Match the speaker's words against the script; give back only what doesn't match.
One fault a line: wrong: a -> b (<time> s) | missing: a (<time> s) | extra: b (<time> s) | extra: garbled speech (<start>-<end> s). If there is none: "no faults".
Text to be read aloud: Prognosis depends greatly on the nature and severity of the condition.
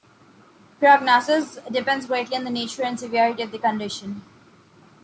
no faults